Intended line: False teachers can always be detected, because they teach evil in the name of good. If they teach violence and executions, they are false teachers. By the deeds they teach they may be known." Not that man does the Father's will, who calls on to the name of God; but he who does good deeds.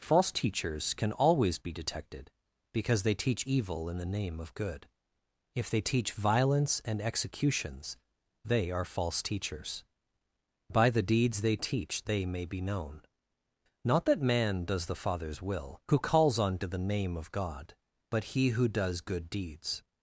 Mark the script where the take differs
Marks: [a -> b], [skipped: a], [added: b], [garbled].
False teachers can always be detected, because they teach evil in the name of good. If they teach violence and executions, they are false teachers. By the deeds they teach they may be known." Not that man does the Father's will, who calls on to the name of God; but he who does good deeds.